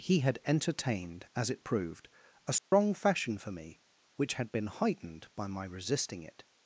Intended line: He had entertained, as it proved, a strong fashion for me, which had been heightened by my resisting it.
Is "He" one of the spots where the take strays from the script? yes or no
no